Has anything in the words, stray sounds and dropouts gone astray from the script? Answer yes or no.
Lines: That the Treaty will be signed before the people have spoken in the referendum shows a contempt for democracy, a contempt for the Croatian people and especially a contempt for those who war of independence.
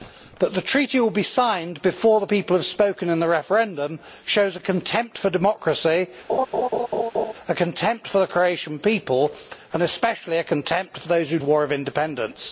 yes